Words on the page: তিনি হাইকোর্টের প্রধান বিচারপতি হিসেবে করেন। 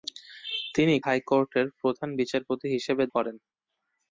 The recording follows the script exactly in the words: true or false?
true